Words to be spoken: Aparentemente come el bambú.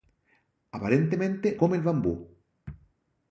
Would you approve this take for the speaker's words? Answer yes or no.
yes